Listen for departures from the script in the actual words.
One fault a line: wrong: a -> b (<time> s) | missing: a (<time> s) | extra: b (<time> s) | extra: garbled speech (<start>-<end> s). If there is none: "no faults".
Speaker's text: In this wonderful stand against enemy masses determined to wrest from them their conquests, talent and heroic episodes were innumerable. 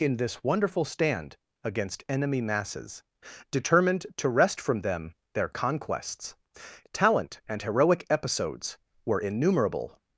no faults